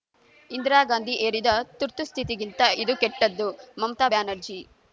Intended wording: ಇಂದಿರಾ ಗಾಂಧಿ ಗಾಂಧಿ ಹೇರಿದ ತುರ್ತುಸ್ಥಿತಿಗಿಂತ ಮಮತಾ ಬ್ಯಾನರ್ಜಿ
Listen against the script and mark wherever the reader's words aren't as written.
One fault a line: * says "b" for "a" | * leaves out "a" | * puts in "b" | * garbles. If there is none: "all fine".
* leaves out "ಗಾಂಧಿ"
* puts in "ಇದು ಕೆಟ್ಟದ್ದು"